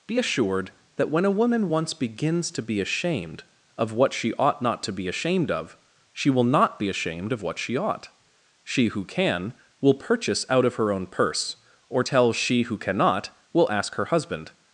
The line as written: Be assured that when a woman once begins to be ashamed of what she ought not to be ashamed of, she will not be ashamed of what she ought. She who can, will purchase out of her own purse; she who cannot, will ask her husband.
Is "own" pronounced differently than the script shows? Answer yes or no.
no